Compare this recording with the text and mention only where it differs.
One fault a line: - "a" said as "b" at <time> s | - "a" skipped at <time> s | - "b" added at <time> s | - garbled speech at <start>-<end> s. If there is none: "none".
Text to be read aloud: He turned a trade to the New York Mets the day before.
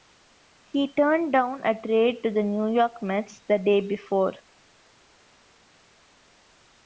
- "down" added at 1.3 s